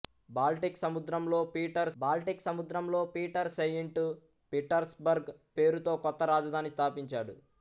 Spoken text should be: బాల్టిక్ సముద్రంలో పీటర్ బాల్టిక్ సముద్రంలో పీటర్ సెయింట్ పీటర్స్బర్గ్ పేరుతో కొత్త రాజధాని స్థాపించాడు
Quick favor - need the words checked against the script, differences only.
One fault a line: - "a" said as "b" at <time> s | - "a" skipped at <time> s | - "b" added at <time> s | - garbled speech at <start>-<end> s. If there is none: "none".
none